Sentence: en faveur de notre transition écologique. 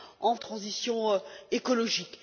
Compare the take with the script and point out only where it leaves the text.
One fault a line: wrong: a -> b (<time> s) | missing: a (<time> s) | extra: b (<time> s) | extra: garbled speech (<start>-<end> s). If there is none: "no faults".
missing: faveur de notre (0.3 s)